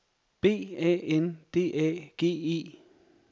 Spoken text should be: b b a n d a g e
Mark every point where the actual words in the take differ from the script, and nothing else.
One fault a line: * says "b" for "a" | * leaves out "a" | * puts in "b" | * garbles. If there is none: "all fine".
* leaves out "b"